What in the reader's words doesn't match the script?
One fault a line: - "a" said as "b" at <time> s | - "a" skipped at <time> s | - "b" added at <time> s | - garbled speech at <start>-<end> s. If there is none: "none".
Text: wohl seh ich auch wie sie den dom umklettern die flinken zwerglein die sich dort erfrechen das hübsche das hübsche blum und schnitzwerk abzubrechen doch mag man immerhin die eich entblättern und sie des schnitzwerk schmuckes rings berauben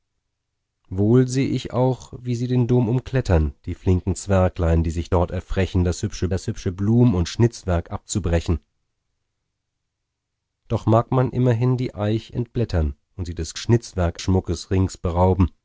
none